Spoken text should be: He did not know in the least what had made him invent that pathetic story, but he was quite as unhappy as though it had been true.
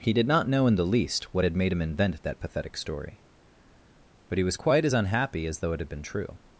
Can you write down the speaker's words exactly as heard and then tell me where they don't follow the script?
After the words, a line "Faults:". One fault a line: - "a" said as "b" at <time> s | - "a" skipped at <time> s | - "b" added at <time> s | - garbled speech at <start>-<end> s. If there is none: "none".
He did not know in the least what had made him invent that pathetic story, but he was quite as unhappy as though it had been true.
Faults:
none